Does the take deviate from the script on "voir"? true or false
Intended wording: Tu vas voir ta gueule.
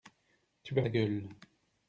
true